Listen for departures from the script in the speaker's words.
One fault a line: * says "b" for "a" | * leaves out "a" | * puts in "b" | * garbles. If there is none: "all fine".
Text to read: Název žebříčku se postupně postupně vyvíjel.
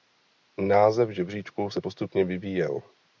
* leaves out "postupně"